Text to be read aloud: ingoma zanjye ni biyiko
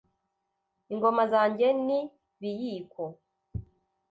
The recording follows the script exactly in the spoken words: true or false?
true